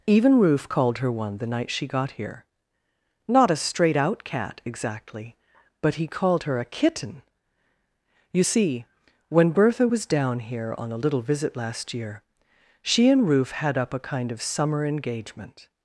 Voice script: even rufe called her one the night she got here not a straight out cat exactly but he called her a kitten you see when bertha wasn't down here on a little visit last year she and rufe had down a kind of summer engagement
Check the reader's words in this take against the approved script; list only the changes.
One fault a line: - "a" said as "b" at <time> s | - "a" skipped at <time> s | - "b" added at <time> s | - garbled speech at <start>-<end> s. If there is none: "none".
- "wasn't" said as "was" at 9.8 s
- "down" said as "up" at 13.8 s